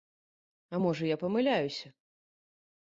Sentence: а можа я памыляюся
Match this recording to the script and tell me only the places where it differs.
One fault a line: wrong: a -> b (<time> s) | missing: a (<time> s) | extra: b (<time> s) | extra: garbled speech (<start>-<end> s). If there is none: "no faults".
no faults